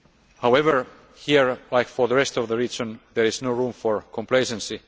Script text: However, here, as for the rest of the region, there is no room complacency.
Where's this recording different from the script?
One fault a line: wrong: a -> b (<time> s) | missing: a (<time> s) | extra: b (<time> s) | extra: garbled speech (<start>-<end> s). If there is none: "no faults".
extra: for (3.7 s)